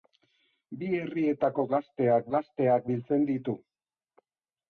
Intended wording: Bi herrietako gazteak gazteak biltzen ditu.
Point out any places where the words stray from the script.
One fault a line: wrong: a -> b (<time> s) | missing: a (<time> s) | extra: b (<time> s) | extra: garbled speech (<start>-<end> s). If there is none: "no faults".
no faults